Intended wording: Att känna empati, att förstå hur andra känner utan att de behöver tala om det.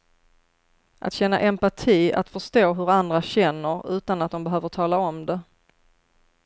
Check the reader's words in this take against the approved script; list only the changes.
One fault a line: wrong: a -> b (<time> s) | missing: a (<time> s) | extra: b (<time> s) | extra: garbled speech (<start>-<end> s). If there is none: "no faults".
no faults